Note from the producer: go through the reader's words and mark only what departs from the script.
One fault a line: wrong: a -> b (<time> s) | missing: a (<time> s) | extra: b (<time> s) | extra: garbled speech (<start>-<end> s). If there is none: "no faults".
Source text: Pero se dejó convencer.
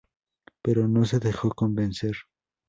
extra: no (0.9 s)